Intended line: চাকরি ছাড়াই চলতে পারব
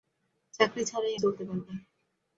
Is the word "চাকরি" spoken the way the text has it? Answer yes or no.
yes